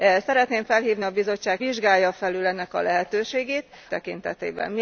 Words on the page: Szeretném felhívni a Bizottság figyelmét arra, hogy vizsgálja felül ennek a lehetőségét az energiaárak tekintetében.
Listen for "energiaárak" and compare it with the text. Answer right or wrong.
wrong